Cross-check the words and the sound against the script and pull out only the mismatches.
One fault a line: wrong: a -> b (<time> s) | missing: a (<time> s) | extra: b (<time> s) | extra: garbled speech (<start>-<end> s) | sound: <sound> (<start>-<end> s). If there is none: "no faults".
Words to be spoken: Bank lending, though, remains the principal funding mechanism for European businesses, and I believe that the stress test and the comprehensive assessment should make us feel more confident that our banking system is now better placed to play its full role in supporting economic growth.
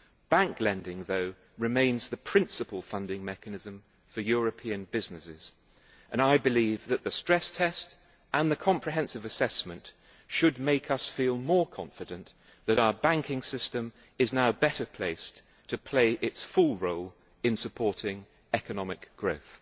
no faults